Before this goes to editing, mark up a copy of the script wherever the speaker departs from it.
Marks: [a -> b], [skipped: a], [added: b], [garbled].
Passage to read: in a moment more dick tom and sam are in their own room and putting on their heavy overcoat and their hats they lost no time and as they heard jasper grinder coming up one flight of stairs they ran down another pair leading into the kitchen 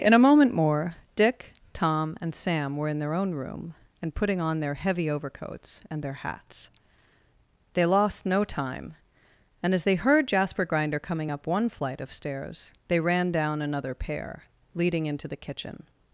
in a moment more dick tom and sam [are -> were] in their own room and putting on their heavy [overcoat -> overcoats] and their hats they lost no time and as they heard jasper grinder coming up one flight of stairs they ran down another pair leading into the kitchen